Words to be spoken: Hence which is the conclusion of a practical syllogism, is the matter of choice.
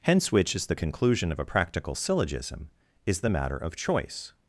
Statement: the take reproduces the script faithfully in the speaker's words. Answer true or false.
true